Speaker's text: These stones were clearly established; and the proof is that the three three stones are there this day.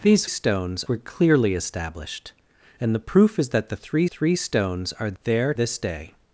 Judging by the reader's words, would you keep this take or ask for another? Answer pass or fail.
pass